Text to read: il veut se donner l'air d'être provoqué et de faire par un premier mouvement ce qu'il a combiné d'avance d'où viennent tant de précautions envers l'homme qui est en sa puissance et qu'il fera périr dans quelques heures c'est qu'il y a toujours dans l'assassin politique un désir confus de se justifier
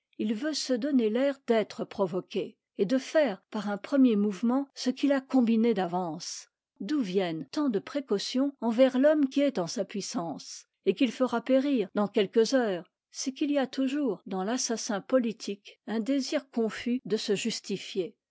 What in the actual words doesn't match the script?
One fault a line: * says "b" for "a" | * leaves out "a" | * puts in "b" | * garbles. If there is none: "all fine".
all fine